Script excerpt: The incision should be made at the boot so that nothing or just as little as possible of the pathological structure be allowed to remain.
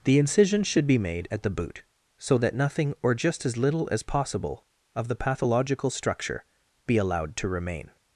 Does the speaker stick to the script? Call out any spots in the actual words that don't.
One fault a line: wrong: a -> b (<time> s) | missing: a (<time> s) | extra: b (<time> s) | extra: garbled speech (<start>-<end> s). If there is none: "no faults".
no faults